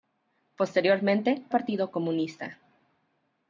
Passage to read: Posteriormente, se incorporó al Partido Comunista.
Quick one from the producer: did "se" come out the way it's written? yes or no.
no